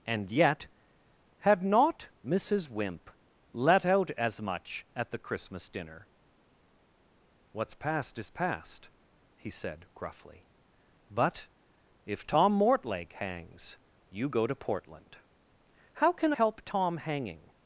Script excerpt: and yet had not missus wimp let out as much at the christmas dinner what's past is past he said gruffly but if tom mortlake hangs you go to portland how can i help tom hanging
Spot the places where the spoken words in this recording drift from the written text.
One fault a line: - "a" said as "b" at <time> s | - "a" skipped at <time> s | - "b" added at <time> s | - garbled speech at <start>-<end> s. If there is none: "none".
- "i" skipped at 16.3 s